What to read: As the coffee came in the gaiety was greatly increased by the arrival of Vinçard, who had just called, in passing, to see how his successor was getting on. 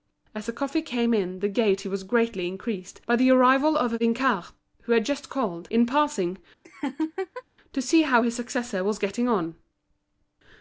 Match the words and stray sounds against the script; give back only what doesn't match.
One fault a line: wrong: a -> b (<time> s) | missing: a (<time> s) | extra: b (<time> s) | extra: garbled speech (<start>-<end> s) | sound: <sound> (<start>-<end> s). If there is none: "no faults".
sound: laugh (6.6-7.4 s)